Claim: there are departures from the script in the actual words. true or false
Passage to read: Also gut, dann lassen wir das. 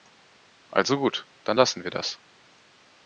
false